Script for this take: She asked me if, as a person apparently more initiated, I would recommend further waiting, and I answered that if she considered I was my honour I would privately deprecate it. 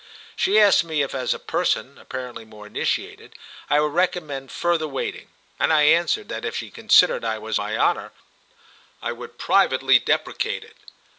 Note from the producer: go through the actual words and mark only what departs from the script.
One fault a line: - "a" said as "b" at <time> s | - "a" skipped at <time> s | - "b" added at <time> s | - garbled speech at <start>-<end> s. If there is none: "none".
none